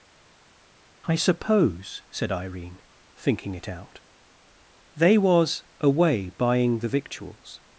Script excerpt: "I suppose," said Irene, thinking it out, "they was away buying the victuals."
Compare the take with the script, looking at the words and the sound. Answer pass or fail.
pass